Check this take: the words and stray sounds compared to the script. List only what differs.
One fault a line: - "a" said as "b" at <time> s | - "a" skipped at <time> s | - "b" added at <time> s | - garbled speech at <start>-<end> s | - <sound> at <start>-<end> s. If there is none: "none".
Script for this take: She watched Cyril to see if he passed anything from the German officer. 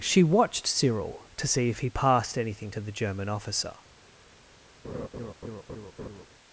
- "from" said as "to" at 2.7 s
- laugh at 4.8-6.3 s